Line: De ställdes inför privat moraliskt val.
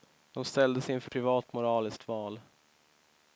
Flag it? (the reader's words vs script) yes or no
no